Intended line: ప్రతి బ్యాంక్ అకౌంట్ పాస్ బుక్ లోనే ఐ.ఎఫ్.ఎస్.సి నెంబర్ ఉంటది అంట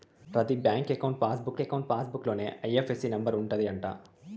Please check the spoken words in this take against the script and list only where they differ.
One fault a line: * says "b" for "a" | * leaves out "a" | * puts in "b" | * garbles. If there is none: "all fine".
* puts in "అకౌంట్ పాస్ బుక్"